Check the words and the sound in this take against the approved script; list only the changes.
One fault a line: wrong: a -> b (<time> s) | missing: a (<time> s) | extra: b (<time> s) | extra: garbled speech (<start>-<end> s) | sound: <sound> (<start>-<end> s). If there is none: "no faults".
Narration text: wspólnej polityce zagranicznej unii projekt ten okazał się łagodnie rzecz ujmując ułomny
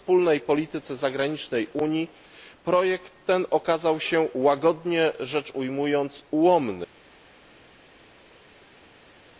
no faults